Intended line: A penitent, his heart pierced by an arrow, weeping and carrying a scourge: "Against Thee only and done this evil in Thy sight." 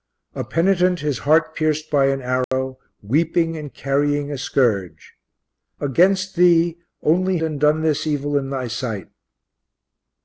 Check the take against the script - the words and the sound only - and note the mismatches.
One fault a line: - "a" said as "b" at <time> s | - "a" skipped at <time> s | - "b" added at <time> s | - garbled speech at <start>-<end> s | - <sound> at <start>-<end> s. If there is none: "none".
- dropout at 2.4-2.5 s